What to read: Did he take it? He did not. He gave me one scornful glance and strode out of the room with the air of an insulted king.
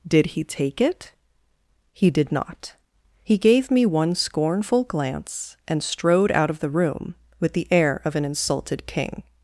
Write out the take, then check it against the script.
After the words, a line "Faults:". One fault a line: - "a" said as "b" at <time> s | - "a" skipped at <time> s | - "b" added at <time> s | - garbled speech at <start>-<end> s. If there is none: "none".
Did he take it? He did not. He gave me one scornful glance and strode out of the room with the air of an insulted king.
Faults:
none